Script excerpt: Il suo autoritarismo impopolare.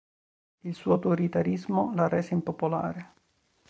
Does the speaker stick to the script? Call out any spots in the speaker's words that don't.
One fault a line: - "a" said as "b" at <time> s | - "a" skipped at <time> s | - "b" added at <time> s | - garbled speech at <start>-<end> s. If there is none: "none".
- "la rese" added at 1.9 s